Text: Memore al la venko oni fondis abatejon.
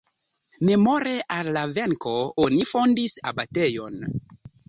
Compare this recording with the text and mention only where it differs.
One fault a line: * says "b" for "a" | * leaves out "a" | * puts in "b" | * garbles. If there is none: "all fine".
all fine